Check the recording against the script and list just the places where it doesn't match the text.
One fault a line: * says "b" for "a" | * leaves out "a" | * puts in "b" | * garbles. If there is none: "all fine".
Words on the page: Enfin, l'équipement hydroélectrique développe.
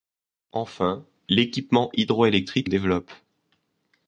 all fine